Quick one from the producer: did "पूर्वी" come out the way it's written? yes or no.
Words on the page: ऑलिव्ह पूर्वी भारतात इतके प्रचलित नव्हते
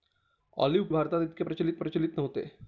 no